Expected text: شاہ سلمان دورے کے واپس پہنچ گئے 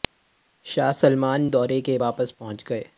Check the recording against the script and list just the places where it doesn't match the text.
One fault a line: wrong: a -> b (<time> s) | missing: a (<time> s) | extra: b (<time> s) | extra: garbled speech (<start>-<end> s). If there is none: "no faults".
no faults